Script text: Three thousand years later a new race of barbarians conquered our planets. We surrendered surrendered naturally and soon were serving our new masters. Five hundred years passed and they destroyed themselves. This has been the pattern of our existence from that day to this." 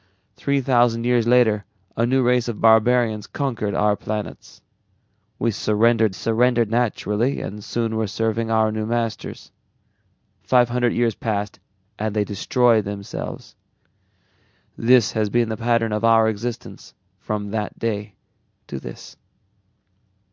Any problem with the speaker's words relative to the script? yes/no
no